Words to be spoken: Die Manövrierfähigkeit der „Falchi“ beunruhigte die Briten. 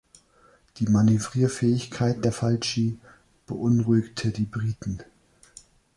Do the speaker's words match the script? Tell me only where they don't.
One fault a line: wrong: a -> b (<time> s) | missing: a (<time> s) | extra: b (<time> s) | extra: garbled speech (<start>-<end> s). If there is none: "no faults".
no faults